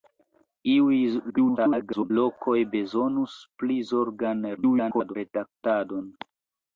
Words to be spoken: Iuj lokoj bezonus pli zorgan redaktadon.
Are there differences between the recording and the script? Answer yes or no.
yes